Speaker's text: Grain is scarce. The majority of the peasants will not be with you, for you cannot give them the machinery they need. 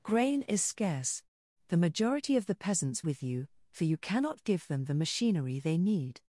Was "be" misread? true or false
true